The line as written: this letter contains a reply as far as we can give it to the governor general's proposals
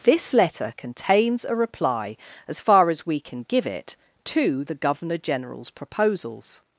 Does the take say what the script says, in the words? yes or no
yes